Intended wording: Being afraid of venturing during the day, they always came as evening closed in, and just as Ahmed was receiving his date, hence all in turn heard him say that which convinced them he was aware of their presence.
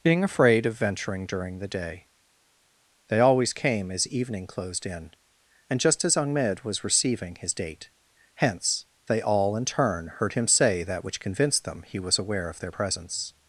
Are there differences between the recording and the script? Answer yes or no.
yes